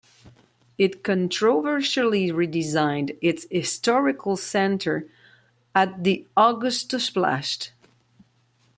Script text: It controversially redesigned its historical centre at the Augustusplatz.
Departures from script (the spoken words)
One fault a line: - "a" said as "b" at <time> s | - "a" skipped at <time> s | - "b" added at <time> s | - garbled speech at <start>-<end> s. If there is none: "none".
none